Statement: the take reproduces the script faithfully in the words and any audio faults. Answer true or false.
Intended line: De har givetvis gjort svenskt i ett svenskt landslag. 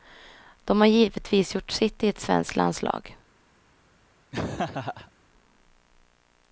false